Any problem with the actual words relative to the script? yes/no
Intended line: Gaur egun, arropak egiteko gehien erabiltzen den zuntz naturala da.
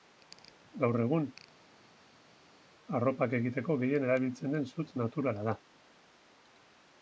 no